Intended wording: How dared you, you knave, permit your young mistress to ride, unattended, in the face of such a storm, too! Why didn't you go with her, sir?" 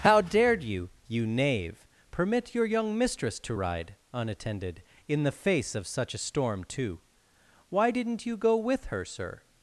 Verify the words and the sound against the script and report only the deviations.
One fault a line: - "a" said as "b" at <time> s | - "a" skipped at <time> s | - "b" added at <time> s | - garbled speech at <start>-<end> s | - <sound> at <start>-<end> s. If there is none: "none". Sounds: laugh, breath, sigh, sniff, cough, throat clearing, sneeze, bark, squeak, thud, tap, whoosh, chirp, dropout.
none